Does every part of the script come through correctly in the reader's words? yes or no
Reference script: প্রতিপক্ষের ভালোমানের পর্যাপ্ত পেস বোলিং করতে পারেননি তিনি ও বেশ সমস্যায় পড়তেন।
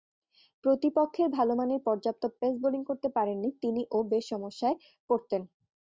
yes